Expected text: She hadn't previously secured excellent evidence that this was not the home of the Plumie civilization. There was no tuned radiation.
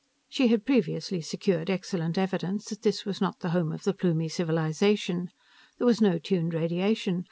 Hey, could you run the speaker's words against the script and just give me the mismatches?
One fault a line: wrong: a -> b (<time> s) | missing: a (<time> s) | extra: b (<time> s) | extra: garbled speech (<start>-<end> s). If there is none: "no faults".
wrong: hadn't -> had (0.5 s)